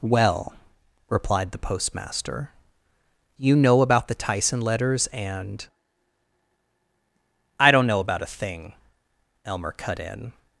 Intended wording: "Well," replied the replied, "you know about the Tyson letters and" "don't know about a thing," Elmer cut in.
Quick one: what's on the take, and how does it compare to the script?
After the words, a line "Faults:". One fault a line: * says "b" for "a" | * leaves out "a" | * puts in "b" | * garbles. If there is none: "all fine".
"Well," replied the postmaster, "you know about the Tyson letters and" "I don't know about a thing," Elmer cut in.
Faults:
* says "postmaster" for "replied"
* puts in "I"